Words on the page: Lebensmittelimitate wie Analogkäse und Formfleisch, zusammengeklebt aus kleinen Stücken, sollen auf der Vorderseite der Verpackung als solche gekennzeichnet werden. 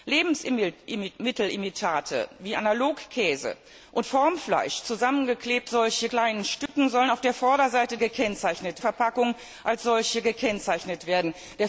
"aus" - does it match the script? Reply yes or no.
no